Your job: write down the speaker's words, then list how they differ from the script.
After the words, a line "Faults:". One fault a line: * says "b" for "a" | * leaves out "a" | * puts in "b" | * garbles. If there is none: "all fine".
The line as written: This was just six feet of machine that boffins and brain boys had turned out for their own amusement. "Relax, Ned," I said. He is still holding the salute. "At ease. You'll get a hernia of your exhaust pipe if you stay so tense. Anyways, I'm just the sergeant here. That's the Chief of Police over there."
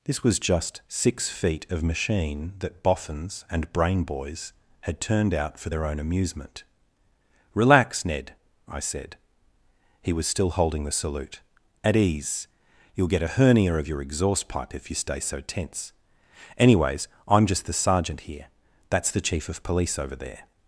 This was just six feet of machine that boffins and brain boys had turned out for their own amusement. "Relax, Ned," I said. He was still holding the salute. "At ease. You'll get a hernia of your exhaust pipe if you stay so tense. Anyways, I'm just the sergeant here. That's the Chief of Police over there."
Faults:
* says "was" for "is"